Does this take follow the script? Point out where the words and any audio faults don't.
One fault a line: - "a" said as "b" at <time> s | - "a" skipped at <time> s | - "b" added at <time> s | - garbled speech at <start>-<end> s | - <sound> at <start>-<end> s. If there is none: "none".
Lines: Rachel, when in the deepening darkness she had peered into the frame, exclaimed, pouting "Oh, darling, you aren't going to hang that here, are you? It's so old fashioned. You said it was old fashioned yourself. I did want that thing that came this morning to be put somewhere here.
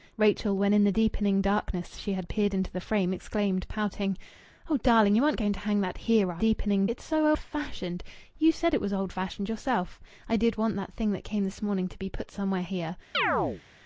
- "you" said as "deepening" at 6.4 s
- "old" skipped at 7.3 s
- chirp at 13.1-13.6 s